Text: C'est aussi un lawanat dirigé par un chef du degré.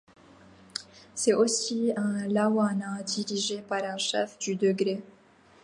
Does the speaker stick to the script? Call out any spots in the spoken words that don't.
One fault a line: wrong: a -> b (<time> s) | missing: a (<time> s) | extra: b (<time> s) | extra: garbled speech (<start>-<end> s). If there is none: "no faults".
no faults